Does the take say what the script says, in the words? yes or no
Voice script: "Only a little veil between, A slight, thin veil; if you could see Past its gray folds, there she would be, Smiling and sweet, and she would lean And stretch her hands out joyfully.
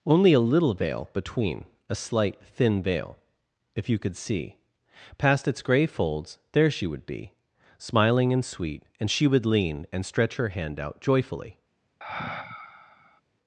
no